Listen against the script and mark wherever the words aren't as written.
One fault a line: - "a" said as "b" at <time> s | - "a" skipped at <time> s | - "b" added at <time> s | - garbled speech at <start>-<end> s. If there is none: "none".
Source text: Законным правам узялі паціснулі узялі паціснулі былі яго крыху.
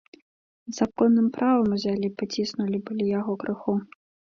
- "узялі паціснулі" skipped at 2.8 s